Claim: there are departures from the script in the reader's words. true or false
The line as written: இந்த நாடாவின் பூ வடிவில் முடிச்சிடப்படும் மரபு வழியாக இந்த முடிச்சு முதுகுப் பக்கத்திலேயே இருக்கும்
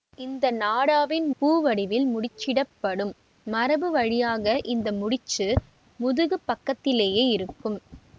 false